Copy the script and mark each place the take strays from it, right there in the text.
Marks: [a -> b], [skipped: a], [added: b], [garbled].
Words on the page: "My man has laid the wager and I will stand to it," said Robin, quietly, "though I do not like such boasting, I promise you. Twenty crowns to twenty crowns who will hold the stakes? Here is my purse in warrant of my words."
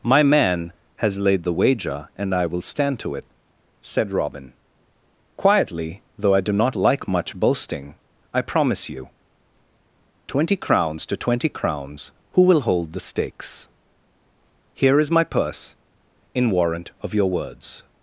"My man has laid the wager and I will stand to it," said Robin, quietly, "though I do not like [such -> much] boasting, I promise you. Twenty crowns to twenty crowns who will hold the stakes? Here is my purse in warrant of [my -> your] words."